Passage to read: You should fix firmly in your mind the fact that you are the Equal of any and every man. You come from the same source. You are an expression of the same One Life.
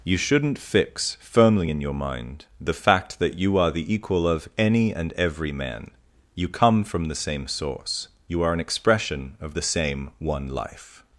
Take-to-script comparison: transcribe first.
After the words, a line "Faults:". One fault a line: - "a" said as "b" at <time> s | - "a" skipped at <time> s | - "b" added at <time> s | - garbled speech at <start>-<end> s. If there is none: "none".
You shouldn't fix firmly in your mind the fact that you are the Equal of any and every man. You come from the same source. You are an expression of the same One Life.
Faults:
- "should" said as "shouldn't" at 0.2 s